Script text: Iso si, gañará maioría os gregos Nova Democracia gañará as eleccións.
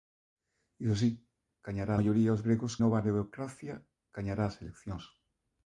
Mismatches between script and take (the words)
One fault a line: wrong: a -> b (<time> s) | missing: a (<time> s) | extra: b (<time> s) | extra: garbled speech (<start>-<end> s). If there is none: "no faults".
no faults